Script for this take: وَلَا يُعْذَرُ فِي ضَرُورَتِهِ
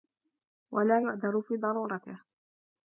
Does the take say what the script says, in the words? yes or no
yes